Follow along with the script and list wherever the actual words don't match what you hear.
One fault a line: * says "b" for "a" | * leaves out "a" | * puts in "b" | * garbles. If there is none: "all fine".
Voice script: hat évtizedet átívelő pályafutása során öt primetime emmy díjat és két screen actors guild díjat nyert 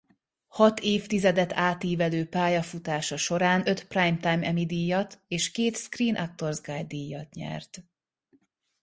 all fine